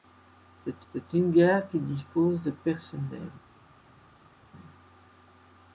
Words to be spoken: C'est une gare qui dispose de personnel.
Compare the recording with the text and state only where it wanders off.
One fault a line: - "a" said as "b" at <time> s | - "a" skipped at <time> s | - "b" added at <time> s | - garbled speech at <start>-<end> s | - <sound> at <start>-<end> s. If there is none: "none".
- "c'est" added at 0.9 s